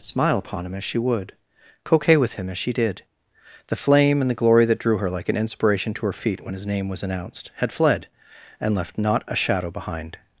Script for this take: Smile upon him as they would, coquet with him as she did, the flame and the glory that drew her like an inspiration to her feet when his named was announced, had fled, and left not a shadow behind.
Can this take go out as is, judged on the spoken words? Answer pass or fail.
fail